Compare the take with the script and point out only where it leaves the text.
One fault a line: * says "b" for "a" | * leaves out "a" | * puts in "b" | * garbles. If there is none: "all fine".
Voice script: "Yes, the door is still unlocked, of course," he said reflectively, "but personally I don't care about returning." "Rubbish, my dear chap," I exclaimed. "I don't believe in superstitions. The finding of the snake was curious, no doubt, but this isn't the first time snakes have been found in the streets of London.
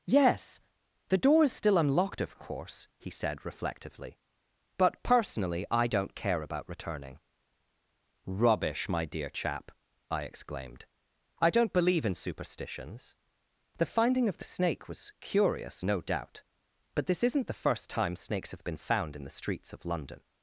all fine